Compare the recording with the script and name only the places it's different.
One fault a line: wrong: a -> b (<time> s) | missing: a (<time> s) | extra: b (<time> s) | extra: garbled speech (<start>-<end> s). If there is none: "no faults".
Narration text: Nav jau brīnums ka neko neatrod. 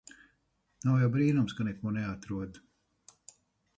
no faults